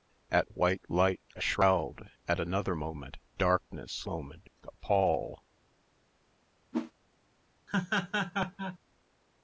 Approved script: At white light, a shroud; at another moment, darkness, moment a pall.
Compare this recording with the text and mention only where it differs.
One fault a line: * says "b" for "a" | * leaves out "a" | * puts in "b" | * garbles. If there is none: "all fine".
all fine